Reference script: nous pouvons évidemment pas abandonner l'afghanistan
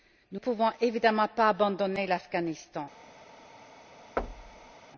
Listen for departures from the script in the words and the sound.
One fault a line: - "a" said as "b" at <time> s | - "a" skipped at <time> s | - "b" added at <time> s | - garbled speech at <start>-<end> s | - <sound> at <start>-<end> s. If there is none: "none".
- thud at 4.2-4.7 s